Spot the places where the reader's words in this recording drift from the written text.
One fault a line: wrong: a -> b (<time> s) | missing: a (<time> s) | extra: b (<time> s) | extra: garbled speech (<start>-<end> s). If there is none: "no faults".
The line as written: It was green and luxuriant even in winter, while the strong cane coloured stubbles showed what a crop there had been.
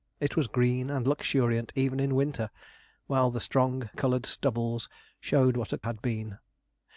missing: cane (3.9 s)
missing: crop there (5.8 s)